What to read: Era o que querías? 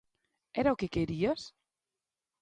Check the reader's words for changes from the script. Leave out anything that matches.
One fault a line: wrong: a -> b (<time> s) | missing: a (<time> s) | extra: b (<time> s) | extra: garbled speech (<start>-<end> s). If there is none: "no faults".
no faults